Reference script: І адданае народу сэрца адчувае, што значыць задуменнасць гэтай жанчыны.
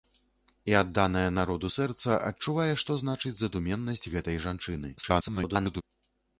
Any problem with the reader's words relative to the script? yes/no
yes